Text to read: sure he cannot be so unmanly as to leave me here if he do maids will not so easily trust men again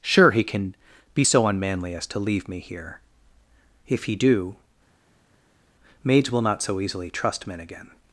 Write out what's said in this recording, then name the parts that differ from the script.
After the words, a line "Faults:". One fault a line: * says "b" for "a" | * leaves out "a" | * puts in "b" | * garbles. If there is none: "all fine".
sure he can be so unmanly as to leave me here if he do maids will not so easily trust men again
Faults:
* says "can" for "cannot"